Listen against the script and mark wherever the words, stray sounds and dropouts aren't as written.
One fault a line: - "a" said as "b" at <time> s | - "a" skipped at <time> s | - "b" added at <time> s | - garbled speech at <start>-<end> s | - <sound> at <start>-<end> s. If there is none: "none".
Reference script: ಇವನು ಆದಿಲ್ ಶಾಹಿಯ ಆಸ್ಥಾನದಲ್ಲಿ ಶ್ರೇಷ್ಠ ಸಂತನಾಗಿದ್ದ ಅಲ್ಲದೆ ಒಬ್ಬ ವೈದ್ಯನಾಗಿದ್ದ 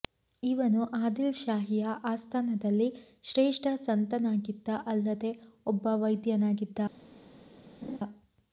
- laugh at 7.8-8.0 s